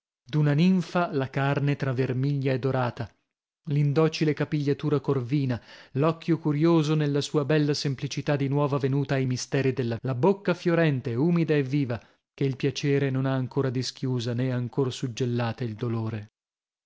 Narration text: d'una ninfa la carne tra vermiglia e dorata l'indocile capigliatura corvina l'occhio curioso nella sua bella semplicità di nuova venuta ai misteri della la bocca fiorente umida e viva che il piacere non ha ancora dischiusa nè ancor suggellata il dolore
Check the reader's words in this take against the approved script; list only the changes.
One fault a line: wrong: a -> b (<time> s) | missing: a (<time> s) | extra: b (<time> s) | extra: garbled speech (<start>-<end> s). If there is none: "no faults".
no faults